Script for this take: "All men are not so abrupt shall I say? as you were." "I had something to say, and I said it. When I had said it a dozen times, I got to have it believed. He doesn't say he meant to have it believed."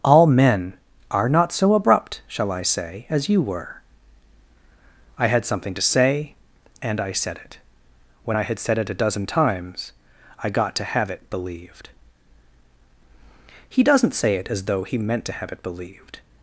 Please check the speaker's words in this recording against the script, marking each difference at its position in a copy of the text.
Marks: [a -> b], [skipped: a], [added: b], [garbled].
"All men are not so abrupt shall I say? as you were." "I had something to say, and I said it. When I had said it a dozen times, I got to have it believed. He doesn't say [added: it as though] he meant to have it believed."